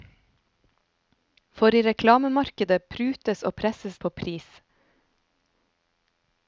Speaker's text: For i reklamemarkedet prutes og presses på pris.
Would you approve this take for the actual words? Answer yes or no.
yes